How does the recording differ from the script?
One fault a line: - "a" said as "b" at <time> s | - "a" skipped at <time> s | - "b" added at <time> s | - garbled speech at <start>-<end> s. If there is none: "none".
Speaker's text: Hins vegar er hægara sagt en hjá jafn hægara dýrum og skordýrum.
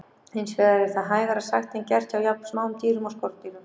- "það" added at 0.9 s
- "gert" added at 1.9 s
- "hægara" said as "smáum" at 2.5 s